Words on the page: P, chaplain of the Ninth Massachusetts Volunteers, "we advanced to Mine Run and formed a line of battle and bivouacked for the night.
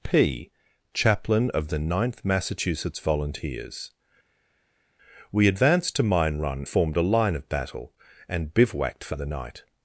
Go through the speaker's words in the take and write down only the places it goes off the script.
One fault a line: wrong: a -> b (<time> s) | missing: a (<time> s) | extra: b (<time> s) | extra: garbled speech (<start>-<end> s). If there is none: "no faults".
missing: and (6.7 s)